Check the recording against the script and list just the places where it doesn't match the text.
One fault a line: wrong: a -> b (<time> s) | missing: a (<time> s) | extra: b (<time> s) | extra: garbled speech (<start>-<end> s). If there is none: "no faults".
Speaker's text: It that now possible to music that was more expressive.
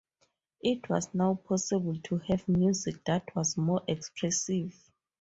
wrong: that -> was (0.9 s)
extra: have (2.2 s)